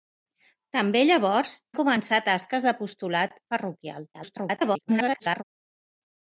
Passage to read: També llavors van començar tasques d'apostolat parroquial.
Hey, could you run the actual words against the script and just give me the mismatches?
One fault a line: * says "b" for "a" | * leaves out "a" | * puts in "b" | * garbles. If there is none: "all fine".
* leaves out "van"
* garbles